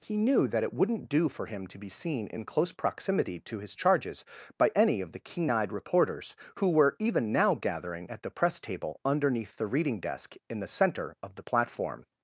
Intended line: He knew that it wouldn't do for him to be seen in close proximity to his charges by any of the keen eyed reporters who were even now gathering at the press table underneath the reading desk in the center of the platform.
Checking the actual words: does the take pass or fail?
pass